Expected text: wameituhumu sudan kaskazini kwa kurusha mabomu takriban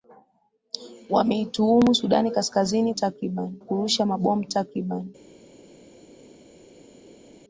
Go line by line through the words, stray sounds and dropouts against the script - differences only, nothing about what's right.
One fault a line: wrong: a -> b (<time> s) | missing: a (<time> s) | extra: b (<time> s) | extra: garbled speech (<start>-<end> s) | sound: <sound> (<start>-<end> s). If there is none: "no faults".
wrong: kwa -> takriban (2.9 s)